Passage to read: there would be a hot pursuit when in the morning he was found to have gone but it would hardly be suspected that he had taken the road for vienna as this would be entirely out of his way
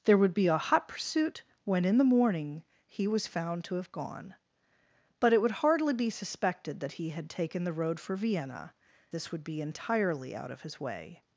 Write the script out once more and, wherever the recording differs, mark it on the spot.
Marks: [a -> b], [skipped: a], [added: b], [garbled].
there would be a hot pursuit when in the morning he was found to have gone but it would hardly be suspected that he had taken the road for vienna [skipped: as] this would be entirely out of his way